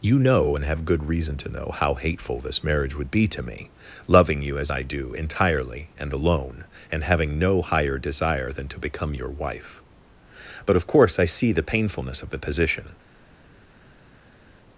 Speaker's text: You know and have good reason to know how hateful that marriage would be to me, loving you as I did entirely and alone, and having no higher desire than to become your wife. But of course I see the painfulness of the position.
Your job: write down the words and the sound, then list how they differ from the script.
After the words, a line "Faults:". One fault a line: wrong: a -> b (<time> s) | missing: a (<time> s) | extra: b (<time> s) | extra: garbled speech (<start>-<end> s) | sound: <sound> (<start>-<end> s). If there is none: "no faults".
You know and have good reason to know how hateful this marriage would be to me, loving you as I do entirely and alone, and having no higher desire than to become your wife. But of course I see the painfulness of the position.
Faults:
wrong: that -> this (2.4 s)
wrong: did -> do (4.8 s)